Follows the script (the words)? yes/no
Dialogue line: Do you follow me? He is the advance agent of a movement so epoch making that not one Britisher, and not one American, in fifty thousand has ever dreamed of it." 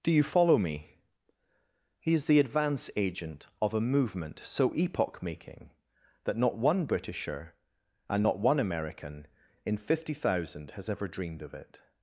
yes